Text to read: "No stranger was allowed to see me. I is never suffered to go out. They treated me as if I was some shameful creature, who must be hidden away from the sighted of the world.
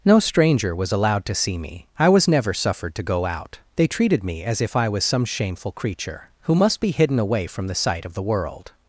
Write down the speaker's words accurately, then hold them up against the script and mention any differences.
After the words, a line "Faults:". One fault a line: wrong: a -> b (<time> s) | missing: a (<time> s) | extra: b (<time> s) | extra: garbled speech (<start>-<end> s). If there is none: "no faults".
"No stranger was allowed to see me. I was never suffered to go out. They treated me as if I was some shameful creature, who must be hidden away from the sight of the world.
Faults:
wrong: is -> was (2.1 s)
wrong: sighted -> sight (7.7 s)